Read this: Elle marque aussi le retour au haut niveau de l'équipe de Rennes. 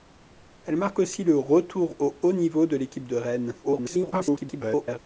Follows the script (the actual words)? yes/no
no